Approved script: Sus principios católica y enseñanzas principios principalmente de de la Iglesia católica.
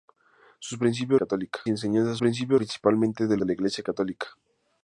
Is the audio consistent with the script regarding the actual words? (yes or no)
yes